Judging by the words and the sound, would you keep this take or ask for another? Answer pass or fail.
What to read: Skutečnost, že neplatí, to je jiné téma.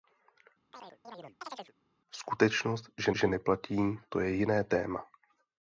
fail